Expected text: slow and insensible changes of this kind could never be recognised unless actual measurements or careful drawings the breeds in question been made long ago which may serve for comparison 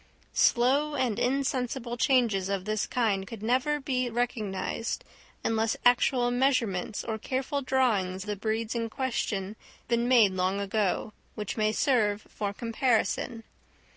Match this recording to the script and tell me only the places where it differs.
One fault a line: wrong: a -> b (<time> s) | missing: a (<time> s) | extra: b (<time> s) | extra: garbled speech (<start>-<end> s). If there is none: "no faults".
no faults